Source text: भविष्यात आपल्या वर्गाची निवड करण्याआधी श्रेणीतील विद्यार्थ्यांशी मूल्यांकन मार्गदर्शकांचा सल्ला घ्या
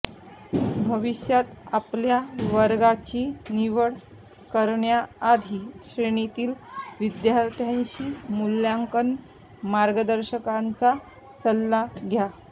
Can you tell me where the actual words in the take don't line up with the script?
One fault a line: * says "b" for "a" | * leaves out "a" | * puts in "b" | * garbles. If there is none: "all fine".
all fine